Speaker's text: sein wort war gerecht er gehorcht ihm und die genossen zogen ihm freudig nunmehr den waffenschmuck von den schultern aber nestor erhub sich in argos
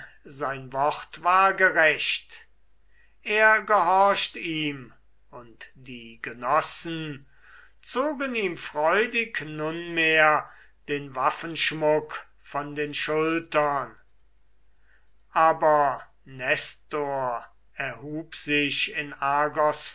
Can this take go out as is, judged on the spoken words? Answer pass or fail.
pass